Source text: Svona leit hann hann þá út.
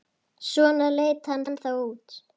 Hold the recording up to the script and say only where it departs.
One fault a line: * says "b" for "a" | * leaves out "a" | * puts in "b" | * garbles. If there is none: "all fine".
all fine